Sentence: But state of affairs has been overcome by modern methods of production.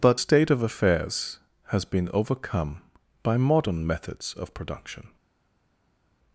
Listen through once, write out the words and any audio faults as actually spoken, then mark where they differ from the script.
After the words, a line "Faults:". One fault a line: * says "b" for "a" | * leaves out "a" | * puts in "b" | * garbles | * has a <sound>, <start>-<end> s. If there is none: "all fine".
But state of affairs has been overcome by modern methods of production.
Faults:
all fine